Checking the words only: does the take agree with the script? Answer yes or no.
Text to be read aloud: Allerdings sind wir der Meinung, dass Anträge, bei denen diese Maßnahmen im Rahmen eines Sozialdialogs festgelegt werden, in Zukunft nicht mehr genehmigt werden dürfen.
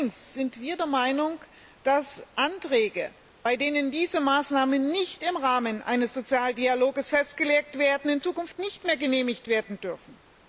no